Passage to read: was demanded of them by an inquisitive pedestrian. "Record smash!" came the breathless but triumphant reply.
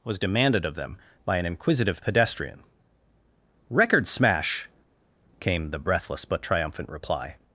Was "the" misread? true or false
false